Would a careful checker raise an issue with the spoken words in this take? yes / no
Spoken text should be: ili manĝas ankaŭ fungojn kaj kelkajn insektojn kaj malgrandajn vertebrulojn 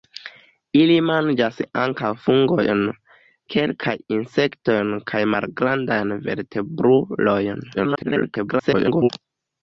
yes